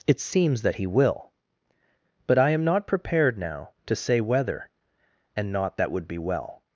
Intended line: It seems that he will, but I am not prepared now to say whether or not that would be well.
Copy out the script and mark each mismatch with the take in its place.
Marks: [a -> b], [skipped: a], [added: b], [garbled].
It seems that he will, but I am not prepared now to say whether [or -> and] not that would be well.